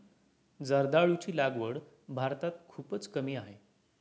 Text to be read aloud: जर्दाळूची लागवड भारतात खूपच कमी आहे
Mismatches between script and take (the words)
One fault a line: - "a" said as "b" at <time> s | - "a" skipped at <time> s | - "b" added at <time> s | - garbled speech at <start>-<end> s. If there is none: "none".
none